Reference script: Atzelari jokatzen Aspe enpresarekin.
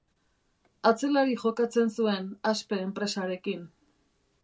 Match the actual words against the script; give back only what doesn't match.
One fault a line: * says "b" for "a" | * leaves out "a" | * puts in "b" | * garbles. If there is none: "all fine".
* puts in "zuen"